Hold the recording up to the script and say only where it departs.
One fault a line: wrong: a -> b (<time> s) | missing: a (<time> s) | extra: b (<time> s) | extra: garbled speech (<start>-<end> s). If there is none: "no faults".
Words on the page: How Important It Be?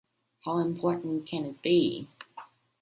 extra: Can (1.3 s)